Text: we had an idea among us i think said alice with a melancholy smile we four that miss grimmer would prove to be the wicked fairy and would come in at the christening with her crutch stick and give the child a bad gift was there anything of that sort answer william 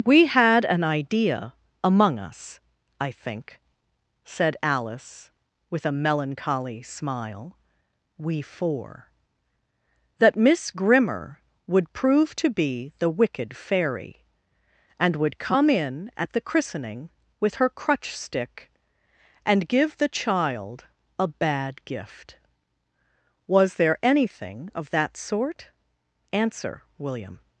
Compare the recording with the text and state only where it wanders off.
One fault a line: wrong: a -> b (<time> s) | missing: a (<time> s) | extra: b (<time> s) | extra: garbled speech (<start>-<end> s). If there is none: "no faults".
no faults